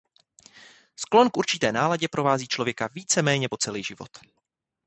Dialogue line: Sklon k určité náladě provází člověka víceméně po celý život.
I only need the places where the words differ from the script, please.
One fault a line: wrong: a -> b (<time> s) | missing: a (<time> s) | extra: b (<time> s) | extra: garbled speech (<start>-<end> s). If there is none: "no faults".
no faults